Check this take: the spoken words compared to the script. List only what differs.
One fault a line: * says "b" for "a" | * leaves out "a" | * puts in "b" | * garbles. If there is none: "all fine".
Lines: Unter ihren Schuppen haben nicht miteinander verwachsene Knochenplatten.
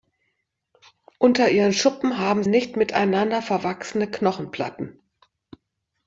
all fine